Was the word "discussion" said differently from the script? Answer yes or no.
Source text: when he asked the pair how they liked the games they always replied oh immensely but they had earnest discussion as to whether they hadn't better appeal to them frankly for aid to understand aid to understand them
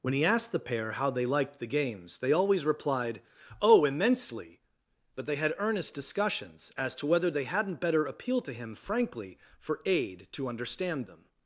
yes